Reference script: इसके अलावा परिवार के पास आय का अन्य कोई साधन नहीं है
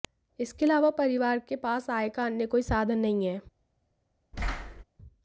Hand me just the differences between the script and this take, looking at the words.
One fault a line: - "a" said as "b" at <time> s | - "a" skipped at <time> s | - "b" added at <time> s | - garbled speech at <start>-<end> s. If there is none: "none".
none